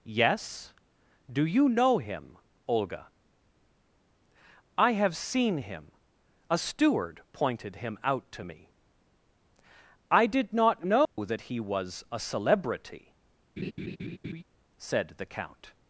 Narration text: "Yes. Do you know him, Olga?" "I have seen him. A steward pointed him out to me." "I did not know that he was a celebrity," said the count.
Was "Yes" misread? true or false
false